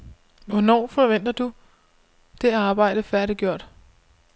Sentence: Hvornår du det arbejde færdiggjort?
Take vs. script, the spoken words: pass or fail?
fail